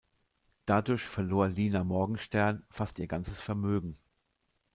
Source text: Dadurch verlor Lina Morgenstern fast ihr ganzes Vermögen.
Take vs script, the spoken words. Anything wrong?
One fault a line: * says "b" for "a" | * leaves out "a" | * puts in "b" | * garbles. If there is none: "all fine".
all fine